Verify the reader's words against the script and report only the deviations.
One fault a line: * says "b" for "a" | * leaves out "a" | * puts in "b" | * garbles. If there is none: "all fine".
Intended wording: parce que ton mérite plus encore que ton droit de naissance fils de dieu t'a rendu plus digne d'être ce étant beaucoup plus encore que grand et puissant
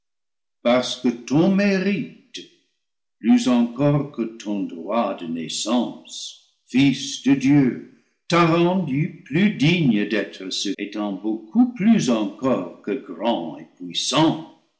all fine